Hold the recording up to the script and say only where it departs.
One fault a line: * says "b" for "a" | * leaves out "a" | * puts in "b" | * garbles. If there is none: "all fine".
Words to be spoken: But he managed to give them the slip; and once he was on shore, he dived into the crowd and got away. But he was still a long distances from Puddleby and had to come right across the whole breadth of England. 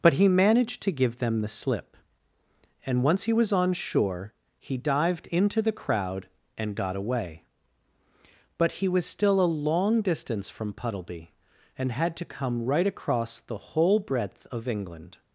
* says "distance" for "distances"